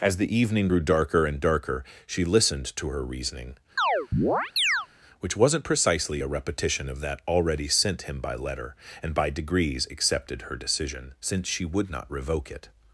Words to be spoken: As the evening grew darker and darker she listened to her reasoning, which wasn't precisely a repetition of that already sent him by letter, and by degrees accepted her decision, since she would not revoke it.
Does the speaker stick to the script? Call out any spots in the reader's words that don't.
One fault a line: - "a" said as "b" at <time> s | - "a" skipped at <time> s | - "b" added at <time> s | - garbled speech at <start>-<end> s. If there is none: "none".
none